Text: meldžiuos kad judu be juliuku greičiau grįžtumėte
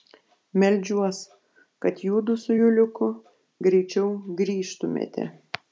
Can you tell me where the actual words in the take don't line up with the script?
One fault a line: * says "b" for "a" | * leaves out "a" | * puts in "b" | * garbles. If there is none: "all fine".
* says "su" for "be"